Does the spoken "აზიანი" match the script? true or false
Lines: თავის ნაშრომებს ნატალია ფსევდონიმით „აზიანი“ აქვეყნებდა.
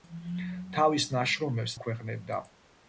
false